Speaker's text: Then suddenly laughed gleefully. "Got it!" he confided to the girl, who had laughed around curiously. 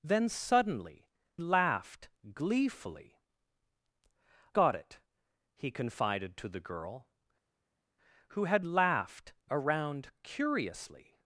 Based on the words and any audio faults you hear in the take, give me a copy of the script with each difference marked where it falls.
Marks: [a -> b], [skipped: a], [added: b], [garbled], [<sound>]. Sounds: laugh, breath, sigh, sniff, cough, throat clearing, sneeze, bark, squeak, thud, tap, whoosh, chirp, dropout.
Then suddenly laughed gleefully. "Got it!" he confided to the girl, who had laughed around curiously.